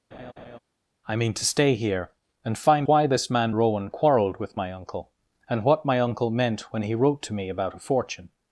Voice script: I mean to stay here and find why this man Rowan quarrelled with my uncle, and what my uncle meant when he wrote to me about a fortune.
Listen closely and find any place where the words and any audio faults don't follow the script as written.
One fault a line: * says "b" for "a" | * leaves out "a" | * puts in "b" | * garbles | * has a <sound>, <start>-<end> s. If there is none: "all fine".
* has a laugh, 0.1-0.6 s